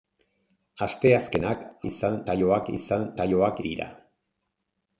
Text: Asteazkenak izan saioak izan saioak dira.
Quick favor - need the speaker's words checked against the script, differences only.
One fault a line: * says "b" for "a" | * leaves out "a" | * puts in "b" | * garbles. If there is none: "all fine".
all fine